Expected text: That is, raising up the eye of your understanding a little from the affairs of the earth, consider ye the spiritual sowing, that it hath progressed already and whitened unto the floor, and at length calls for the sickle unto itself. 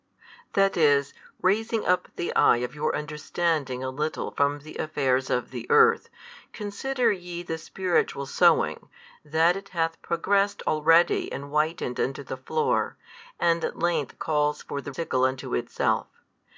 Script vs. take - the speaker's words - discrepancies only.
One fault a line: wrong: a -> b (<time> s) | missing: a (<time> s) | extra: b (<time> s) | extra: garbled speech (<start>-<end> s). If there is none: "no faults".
no faults